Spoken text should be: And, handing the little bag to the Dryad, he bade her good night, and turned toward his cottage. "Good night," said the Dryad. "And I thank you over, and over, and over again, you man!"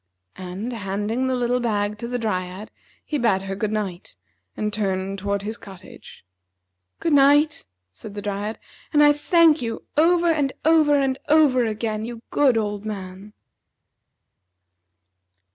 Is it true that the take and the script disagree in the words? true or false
true